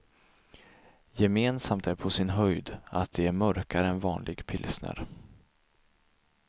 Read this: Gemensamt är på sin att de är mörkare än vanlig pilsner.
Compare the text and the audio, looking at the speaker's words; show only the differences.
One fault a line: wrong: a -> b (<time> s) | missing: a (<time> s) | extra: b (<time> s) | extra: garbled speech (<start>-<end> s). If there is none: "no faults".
extra: höjd (2.3 s)